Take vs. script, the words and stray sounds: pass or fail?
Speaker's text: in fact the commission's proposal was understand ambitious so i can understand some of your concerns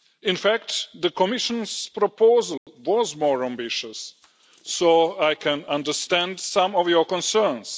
fail